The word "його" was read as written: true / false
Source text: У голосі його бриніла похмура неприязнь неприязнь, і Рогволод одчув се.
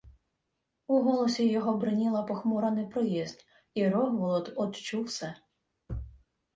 true